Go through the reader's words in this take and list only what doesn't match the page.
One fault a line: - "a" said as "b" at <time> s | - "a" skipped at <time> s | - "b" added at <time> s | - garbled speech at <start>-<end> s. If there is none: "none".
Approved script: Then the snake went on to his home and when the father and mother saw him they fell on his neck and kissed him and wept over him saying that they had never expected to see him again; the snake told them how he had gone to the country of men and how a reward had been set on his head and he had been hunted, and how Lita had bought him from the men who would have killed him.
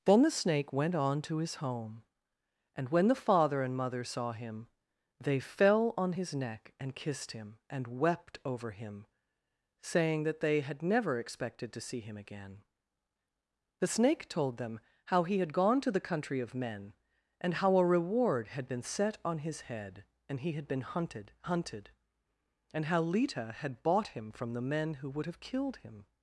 - "hunted" added at 21.4 s